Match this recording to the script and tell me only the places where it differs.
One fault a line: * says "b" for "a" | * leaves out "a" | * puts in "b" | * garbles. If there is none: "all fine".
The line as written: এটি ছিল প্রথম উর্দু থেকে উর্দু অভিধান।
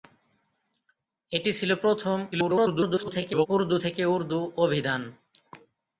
* garbles